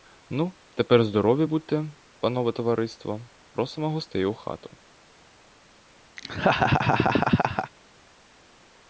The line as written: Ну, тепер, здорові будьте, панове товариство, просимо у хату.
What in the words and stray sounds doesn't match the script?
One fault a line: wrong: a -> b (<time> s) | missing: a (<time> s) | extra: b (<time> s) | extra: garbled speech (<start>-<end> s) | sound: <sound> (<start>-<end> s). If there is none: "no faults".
extra: гостей (3.9 s)
sound: laugh (6.2-7.7 s)